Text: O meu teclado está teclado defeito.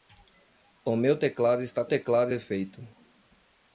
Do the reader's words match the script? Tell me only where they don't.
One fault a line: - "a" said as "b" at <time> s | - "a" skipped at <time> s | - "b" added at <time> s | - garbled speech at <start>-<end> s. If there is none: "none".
none